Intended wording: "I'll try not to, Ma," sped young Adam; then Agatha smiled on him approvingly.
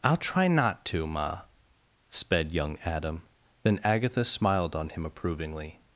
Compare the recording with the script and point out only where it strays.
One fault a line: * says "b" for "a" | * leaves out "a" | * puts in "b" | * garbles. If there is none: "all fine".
all fine